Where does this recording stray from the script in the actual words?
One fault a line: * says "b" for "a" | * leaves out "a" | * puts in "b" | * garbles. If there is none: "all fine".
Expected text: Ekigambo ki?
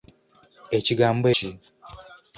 all fine